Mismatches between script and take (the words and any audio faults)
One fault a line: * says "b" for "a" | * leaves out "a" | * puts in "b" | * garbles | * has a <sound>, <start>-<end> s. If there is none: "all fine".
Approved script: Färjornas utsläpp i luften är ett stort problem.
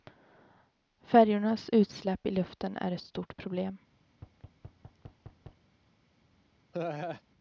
* has a thud, 4.1-5.7 s
* has a laugh, 6.7-7.2 s